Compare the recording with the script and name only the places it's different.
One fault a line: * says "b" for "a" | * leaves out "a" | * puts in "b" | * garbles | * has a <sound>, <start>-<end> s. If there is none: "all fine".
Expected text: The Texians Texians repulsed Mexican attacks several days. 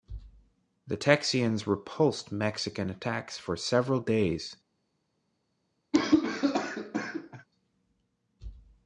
* leaves out "Texians"
* puts in "for"
* has a cough, 5.9-7.5 s